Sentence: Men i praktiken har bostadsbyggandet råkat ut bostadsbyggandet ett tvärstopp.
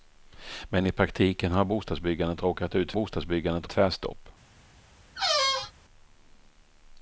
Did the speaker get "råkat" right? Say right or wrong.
right